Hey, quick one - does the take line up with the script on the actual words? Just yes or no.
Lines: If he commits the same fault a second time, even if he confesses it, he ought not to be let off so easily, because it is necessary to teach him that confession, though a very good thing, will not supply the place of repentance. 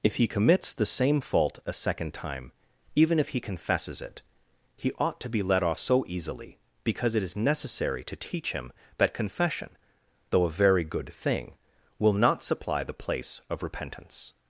no